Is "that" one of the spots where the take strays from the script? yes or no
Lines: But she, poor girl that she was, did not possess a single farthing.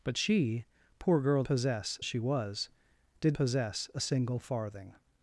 yes